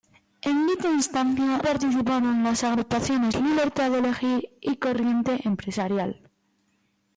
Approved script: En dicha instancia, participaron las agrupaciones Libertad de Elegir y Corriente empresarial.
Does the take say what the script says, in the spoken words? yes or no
yes